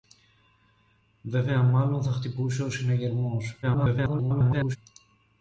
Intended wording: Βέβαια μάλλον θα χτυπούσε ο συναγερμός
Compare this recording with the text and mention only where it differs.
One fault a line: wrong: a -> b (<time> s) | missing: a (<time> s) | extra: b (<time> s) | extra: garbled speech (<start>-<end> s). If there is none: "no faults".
extra: garbled speech (3.6-4.8 s)